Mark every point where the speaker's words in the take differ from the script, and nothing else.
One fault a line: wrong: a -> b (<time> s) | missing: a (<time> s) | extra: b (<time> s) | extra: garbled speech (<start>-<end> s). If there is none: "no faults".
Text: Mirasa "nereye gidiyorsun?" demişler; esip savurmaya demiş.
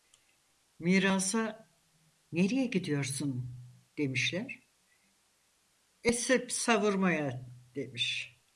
no faults